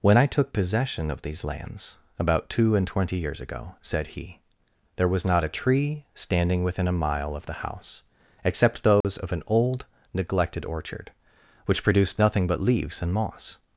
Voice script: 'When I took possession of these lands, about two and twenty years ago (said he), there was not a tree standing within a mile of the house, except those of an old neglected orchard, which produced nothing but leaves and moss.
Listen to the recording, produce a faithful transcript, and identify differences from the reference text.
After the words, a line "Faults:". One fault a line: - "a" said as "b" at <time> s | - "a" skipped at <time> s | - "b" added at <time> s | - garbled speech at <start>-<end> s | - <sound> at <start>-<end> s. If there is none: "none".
'When I took possession of these lands, about two and twenty years ago (said he), there was not a tree standing within a mile of the house, except those of an old neglected orchard, which produced nothing but leaves and moss.
Faults:
- dropout at 9.0-9.0 s